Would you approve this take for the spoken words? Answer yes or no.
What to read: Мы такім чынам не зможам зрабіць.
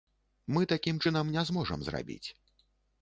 yes